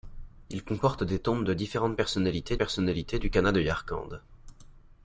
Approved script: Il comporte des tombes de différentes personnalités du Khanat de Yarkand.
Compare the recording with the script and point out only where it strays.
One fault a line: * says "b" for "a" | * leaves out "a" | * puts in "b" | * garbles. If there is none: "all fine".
* puts in "personnalités"